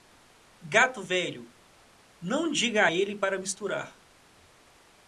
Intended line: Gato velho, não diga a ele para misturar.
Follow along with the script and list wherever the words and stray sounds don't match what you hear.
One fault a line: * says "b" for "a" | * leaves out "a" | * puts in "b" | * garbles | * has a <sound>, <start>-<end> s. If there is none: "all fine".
all fine